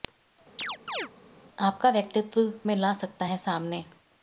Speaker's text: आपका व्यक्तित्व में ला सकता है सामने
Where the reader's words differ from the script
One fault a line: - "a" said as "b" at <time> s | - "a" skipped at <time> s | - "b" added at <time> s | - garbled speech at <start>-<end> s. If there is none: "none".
none